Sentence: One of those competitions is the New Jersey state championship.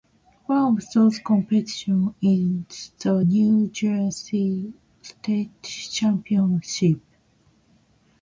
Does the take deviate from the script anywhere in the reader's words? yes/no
no